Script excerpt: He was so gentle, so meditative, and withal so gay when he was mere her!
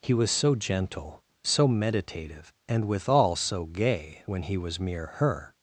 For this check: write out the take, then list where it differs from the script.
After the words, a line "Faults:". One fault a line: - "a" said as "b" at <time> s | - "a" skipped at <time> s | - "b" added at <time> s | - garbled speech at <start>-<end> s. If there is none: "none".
He was so gentle, so meditative, and withal so gay when he was mere her!
Faults:
none